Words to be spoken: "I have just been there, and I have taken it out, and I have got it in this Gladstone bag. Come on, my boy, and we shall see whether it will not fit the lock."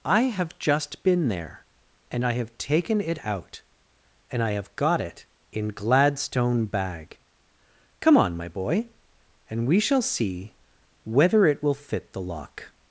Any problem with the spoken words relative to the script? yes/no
yes